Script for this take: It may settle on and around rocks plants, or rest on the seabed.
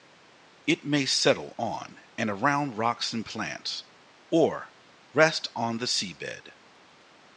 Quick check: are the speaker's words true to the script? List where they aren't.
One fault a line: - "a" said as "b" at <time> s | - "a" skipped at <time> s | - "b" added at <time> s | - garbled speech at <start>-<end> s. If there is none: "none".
- "and" added at 3.1 s